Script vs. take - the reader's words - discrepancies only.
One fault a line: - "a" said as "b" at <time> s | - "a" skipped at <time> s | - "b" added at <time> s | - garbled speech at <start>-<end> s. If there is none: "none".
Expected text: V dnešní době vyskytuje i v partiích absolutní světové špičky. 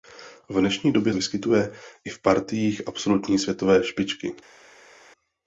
none